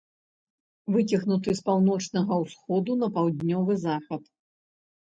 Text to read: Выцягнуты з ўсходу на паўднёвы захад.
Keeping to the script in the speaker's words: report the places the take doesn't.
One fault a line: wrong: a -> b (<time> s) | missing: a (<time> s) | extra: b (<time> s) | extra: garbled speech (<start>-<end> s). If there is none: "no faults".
extra: паўночнага (1.7 s)